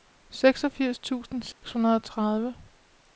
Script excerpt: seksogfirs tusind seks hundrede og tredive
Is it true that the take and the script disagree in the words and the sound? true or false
true